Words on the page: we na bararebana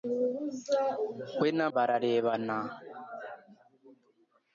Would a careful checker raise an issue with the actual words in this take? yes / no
no